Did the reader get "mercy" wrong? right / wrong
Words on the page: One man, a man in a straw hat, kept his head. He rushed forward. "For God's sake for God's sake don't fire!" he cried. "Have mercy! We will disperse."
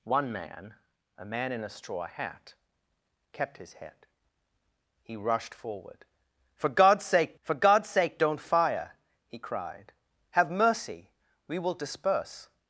right